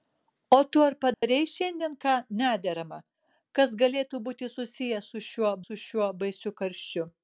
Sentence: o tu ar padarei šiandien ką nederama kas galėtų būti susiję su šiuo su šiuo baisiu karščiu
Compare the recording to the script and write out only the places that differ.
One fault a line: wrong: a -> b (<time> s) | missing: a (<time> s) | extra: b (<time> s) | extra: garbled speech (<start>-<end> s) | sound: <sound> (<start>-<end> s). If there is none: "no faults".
sound: dropout (1.1-1.2 s)